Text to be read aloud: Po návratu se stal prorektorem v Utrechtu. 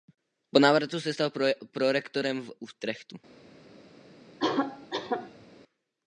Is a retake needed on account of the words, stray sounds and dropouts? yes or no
yes